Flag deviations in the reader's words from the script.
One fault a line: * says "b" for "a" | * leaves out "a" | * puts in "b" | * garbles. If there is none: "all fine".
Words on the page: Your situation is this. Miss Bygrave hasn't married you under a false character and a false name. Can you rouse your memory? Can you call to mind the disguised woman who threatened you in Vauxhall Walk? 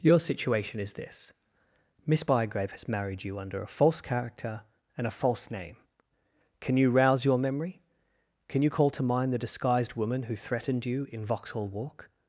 * says "has" for "hasn't"